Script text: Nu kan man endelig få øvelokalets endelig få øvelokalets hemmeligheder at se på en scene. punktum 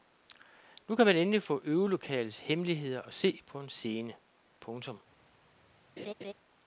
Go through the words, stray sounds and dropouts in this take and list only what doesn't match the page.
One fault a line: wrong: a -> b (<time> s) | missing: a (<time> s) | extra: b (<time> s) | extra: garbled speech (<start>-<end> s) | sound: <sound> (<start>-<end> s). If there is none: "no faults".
missing: endelig få øvelokalets (2.4 s)
sound: laugh (6.0-6.3 s)